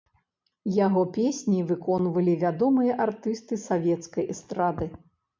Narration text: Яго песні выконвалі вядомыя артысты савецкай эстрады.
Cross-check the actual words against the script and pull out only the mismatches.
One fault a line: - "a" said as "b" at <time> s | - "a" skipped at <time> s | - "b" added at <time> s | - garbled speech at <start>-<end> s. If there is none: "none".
none